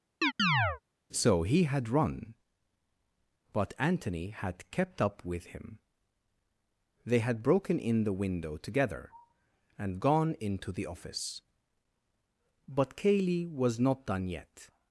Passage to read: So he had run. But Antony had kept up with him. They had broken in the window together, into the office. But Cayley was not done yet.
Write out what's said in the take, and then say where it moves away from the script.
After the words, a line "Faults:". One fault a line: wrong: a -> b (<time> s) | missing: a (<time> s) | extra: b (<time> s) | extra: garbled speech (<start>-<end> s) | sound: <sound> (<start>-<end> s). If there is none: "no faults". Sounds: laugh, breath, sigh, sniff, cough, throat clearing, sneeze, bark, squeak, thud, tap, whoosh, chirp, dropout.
So he had run. But Antony had kept up with him. They had broken in the window together, and gone into the office. But Cayley was not done yet.
Faults:
sound: chirp (0.2-0.8 s)
extra: and gone (9.8 s)